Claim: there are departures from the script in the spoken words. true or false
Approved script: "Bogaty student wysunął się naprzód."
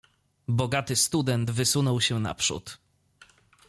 false